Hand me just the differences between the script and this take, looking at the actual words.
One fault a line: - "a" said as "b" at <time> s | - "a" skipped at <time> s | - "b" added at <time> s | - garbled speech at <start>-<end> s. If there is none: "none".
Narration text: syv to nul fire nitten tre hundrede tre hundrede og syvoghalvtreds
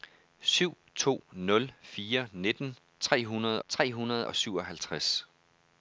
none